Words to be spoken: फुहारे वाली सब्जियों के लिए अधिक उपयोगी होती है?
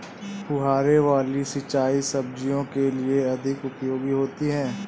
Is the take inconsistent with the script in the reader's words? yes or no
yes